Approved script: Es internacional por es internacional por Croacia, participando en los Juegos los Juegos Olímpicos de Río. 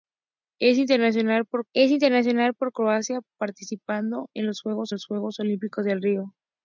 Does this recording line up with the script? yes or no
yes